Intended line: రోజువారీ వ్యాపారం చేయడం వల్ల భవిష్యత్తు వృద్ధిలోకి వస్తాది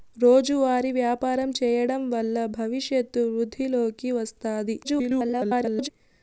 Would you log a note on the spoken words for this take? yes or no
yes